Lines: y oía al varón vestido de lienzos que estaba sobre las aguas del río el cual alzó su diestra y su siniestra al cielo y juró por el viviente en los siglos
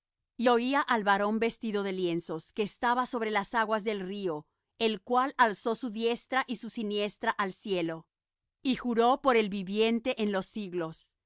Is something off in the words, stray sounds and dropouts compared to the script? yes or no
no